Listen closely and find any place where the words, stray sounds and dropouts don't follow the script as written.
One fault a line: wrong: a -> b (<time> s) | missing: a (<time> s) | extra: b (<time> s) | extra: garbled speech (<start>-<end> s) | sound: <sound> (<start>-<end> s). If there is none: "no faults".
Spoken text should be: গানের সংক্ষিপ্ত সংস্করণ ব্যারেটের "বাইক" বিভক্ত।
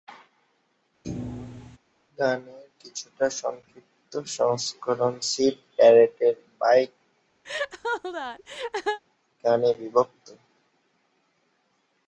sound: thud (1.0-1.8 s)
extra: কিছুটা (2.8 s)
extra: সিড (5.3 s)
sound: laugh (7.4-9.0 s)
extra: গানে (9.4 s)